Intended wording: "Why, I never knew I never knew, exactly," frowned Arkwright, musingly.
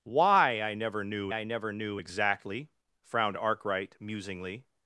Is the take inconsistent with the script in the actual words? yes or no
no